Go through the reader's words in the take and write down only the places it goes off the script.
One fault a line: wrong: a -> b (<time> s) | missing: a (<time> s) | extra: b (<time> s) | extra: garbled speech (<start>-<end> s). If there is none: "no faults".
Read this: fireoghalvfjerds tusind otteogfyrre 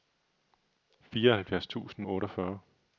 no faults